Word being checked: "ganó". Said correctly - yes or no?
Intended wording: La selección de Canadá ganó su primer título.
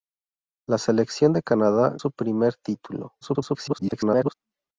no